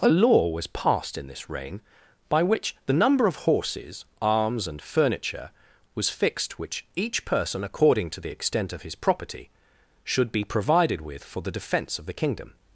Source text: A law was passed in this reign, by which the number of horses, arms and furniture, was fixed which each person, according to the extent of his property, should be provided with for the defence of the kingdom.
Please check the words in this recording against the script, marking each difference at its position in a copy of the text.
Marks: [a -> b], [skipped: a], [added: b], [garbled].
A law was passed in this reign, by which the number of horses, arms and furniture, was fixed which each person, according to the extent of his property, should be provided with for the defence of the kingdom.